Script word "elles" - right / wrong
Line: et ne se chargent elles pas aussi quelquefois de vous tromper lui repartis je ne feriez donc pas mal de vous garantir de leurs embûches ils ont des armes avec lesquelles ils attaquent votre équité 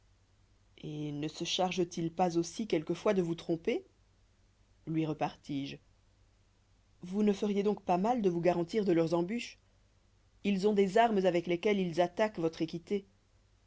wrong